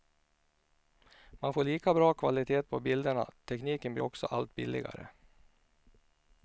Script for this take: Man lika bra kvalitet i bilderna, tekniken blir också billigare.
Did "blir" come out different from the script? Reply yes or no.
no